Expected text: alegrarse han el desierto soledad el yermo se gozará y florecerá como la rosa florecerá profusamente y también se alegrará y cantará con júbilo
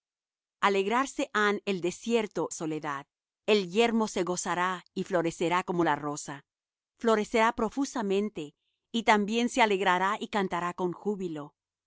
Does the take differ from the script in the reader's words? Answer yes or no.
no